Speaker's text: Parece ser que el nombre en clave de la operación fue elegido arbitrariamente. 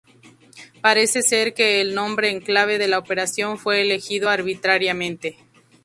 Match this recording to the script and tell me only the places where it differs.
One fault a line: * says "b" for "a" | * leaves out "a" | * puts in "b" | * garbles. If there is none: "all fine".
all fine